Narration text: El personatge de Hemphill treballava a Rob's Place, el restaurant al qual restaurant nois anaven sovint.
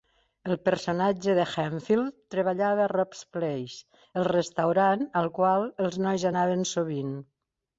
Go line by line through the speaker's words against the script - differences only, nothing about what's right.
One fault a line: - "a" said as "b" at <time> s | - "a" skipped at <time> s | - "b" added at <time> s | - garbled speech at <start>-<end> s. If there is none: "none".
- "restaurant" said as "els" at 5.9 s